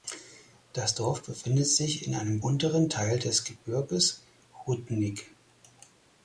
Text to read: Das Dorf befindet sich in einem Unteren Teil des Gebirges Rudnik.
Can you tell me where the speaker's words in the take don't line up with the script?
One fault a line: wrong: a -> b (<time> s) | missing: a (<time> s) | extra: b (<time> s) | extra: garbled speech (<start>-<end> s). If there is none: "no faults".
no faults